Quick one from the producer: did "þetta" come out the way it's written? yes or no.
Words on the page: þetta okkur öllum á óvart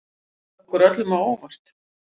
yes